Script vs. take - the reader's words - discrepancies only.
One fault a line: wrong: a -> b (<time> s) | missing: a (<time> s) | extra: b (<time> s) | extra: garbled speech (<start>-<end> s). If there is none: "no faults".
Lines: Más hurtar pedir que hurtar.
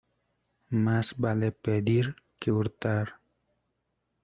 wrong: hurtar -> vale (1.2 s)